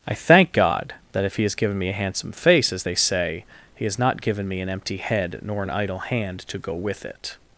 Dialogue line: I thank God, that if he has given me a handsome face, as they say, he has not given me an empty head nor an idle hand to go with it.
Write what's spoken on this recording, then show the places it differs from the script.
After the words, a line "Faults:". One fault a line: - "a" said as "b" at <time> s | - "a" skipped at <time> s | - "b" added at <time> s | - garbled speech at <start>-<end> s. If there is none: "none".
I thank God, that if he has given me a handsome face, as they say, he has not given me an empty head nor an idle hand to go with it.
Faults:
none